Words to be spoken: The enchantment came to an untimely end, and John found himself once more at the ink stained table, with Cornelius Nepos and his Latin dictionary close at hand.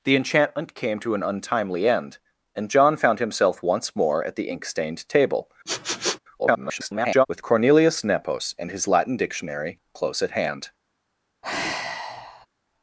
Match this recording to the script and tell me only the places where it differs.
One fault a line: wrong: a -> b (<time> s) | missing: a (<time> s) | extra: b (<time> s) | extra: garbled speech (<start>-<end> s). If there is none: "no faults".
extra: garbled speech (6.4-7.3 s)